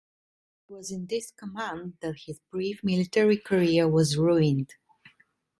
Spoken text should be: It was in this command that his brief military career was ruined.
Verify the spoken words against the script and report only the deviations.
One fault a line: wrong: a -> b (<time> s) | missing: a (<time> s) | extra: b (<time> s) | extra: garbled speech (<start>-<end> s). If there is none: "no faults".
no faults